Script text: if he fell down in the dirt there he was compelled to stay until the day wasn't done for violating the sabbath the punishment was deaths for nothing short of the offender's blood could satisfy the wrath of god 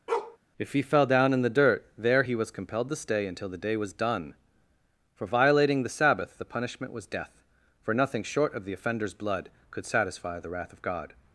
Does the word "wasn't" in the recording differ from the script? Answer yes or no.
yes